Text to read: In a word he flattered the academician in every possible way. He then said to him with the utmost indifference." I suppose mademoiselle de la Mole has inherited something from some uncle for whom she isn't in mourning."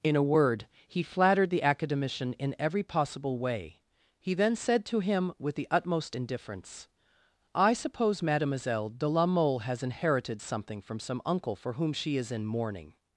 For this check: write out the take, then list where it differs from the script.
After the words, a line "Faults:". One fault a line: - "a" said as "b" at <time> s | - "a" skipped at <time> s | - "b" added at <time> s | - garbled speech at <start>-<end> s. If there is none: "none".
In a word he flattered the academician in every possible way. He then said to him with the utmost indifference." I suppose mademoiselle de la Mole has inherited something from some uncle for whom she is in mourning."
Faults:
- "isn't" said as "is" at 12.2 s